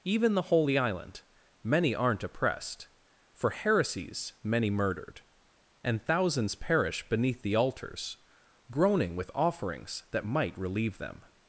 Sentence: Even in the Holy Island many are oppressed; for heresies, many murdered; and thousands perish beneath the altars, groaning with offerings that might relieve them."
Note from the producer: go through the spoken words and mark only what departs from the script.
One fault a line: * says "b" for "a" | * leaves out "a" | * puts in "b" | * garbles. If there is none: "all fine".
* leaves out "in"
* says "aren't" for "are"